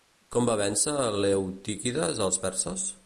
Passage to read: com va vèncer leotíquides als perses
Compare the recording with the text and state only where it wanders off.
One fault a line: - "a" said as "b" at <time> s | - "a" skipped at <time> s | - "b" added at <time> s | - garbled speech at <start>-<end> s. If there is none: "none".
none